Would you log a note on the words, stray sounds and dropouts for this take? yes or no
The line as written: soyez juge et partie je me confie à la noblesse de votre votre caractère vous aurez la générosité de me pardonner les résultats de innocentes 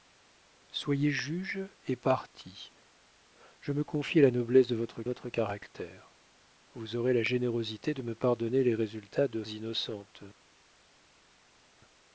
no